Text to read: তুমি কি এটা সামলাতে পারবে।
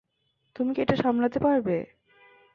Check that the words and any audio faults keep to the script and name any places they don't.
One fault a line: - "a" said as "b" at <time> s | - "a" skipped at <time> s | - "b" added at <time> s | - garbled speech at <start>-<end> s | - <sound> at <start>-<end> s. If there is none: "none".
none